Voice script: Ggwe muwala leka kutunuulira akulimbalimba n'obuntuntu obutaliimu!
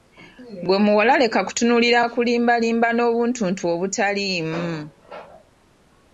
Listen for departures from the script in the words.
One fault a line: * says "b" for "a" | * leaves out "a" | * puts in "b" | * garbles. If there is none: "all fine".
all fine